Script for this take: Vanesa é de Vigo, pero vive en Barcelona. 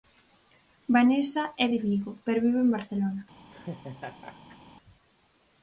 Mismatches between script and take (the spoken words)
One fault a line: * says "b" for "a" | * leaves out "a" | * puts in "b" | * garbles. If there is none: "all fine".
all fine